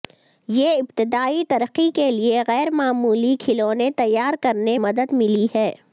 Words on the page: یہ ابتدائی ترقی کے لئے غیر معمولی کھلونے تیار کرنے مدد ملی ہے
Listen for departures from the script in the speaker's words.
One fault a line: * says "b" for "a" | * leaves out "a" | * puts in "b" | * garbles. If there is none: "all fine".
all fine